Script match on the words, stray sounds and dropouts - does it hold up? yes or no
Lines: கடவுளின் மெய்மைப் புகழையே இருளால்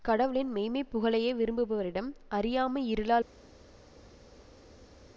no